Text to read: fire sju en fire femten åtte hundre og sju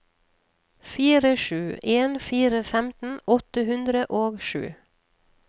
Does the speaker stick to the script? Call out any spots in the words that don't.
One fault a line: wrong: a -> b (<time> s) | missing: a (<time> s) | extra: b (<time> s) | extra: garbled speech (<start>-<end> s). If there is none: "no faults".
no faults